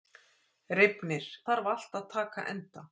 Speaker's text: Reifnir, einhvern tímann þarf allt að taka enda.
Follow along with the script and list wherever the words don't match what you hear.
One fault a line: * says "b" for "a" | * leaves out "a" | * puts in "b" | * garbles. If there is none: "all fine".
* leaves out "einhvern tímann"